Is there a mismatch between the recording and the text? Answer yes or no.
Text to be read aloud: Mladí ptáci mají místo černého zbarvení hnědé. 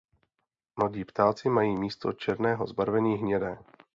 no